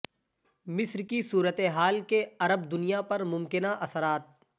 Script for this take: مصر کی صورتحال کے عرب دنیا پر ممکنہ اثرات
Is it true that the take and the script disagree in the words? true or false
false